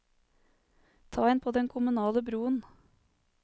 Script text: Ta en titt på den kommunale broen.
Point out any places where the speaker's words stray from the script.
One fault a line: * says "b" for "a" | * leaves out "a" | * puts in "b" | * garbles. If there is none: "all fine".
* leaves out "titt"